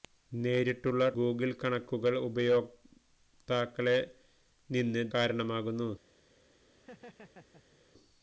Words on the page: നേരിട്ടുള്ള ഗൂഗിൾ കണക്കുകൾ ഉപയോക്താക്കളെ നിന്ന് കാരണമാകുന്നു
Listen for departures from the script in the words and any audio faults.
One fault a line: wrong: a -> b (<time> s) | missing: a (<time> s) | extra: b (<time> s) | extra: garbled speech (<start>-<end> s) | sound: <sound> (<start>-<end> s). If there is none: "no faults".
sound: laugh (6.7-7.8 s)